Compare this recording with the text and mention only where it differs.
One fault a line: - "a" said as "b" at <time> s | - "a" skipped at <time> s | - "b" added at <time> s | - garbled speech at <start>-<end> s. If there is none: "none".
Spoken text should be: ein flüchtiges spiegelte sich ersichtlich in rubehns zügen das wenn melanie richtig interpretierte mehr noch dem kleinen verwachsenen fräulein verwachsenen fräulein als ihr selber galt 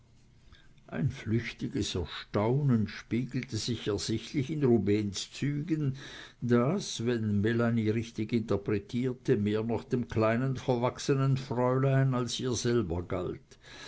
- "erstaunen" added at 1.9 s
- "verwachsenen fräulein" skipped at 12.1 s